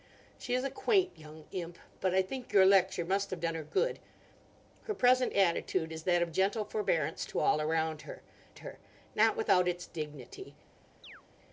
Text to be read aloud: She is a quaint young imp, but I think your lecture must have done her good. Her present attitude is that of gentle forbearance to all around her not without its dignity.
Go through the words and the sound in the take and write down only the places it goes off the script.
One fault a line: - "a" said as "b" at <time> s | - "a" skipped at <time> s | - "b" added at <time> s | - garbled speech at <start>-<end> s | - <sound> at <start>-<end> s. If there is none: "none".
- "her" added at 8.6 s
- chirp at 11.0-11.2 s